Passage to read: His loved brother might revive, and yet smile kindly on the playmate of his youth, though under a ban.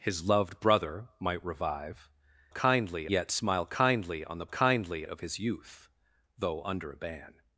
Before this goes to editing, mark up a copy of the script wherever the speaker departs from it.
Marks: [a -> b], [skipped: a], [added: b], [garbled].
His loved brother might revive, [and -> kindly] yet smile kindly on the [playmate -> kindly] of his youth, though under a ban.